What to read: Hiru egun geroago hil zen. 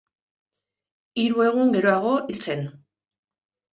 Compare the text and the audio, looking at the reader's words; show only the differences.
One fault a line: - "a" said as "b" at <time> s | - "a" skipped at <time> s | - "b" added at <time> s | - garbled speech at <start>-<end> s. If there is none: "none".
none